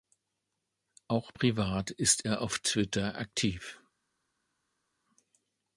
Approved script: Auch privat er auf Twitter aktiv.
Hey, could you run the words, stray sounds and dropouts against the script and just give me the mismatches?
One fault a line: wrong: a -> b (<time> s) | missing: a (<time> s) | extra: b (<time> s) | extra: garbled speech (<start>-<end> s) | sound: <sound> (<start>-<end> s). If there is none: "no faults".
extra: ist (1.9 s)